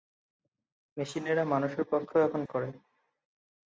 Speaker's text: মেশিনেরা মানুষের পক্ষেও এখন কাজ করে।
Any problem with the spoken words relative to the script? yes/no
yes